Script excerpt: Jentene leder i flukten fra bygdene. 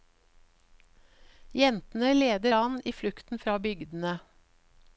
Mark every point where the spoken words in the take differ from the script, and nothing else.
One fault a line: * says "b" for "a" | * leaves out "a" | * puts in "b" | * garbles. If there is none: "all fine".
* puts in "an"